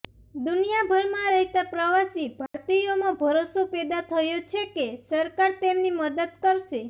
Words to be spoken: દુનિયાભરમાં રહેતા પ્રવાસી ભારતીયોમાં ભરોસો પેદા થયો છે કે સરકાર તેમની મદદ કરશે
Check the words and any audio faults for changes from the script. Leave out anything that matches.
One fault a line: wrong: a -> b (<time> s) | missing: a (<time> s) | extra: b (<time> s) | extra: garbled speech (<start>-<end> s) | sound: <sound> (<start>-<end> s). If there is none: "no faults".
sound: dropout (2.5-2.5 s)